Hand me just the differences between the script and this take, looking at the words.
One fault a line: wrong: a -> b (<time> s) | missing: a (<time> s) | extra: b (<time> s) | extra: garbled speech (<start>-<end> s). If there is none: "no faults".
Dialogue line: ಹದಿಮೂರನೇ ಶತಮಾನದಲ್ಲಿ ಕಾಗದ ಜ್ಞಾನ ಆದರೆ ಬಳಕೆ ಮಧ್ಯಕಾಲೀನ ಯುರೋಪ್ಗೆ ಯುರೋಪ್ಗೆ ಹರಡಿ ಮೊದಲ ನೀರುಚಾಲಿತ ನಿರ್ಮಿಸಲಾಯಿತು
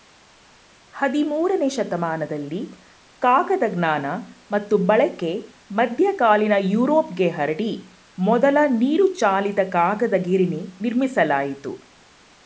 wrong: ಆದರೆ -> ಮತ್ತು (4.5 s)
missing: ಯುರೋಪ್ಗೆ (7.3 s)
extra: ಕಾಗದ ಗಿರಣಿ (9.7 s)